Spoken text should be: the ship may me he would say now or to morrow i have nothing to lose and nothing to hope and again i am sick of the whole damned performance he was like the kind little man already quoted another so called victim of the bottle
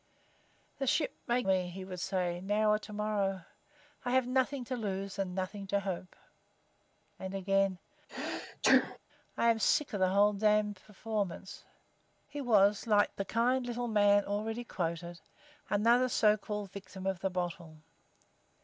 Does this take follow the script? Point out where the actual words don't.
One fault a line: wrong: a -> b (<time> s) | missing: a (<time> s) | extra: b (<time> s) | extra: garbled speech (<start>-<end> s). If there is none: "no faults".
no faults